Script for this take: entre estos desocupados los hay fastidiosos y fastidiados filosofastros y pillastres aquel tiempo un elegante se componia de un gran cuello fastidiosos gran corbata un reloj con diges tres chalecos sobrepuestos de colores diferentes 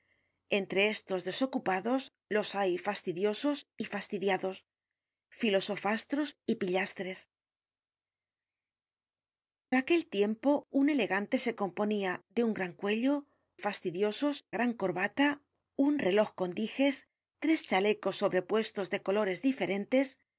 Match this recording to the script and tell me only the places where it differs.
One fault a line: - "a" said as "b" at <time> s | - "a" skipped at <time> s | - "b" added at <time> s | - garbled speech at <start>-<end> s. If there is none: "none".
none